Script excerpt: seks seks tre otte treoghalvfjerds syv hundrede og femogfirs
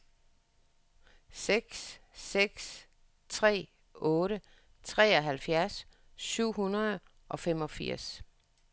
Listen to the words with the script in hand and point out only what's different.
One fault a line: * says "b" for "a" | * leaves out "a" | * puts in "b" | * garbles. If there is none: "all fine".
all fine